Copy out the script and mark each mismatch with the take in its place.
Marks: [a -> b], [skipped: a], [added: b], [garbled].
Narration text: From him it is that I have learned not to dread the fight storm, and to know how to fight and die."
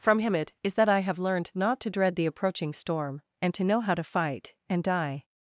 From him it is that I have learned not to dread the [fight -> approaching] storm, and to know how to fight and die."